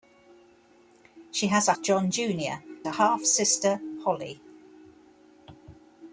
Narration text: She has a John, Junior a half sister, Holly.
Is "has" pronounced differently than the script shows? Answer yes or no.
no